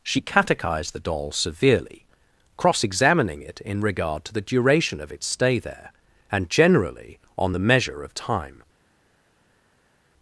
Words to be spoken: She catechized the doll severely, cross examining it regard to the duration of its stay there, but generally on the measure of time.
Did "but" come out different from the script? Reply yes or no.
yes